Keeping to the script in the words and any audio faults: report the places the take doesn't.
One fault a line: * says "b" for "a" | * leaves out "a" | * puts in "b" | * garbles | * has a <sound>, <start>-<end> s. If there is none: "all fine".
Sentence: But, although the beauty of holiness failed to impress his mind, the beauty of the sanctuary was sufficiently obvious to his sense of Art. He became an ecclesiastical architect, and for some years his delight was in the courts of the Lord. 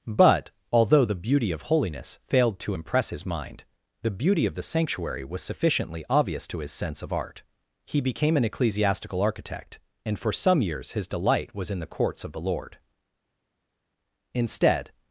* puts in "Instead"